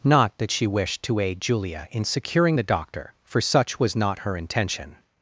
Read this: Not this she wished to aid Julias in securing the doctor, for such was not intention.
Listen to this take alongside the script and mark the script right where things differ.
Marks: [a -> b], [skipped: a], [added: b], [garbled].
Not [this -> that] she wished to aid [Julias -> Julia] in securing the doctor, for such was not [added: her] intention.